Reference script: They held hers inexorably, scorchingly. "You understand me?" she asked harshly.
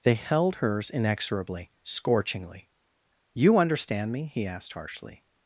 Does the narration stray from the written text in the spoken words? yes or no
yes